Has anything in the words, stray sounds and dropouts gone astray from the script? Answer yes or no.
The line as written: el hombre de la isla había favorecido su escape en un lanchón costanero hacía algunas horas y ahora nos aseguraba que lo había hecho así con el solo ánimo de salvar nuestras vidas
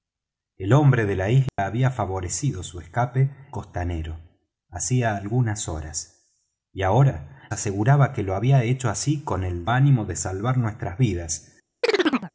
yes